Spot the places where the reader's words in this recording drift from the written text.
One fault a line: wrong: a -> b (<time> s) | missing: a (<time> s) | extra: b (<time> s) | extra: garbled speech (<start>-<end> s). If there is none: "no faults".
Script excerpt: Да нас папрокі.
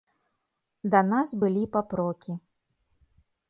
extra: былі (1.4 s)